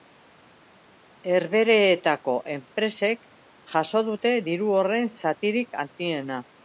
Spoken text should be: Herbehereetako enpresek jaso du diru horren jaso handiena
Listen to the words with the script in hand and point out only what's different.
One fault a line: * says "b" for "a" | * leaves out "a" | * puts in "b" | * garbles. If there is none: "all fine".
* says "dute" for "du"
* says "zatirik" for "jaso"